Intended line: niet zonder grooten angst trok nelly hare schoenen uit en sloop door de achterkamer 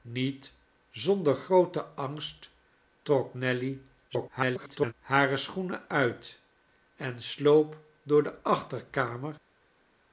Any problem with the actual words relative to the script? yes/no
yes